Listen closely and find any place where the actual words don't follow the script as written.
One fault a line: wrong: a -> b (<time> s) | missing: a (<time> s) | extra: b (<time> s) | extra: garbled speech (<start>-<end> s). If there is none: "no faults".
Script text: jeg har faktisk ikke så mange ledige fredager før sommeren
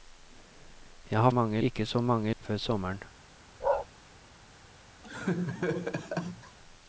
wrong: faktisk -> mange (1.3 s)
missing: ledige fredager (2.3 s)